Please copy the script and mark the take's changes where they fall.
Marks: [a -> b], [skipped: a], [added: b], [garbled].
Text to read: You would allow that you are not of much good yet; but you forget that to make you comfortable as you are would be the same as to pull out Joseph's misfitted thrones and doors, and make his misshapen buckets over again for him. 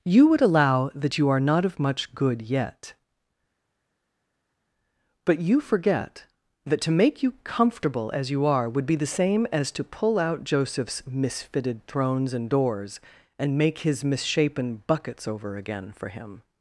You would allow that you are not of much good yet; but you forget that to make you comfortable as you are would be the same as to pull out Joseph's misfitted thrones and doors, and make his misshapen buckets over again for him.